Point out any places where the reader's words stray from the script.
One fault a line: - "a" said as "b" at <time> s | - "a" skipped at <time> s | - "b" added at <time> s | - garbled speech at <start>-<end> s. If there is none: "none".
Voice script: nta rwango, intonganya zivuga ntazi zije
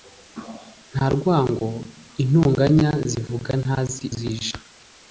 none